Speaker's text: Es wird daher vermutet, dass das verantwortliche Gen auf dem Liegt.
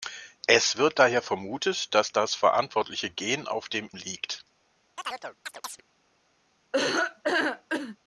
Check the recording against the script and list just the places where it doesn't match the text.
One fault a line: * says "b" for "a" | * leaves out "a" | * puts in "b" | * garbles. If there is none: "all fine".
all fine